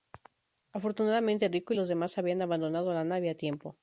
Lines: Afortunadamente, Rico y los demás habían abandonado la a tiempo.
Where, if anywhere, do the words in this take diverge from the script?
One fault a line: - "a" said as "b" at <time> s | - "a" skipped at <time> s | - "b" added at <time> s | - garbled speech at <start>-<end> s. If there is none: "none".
- "nave" added at 3.0 s